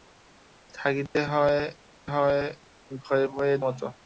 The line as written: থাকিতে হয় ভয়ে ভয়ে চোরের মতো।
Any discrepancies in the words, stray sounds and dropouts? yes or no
yes